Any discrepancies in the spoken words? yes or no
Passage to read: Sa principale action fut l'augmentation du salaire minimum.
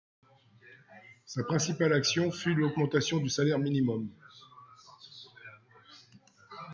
no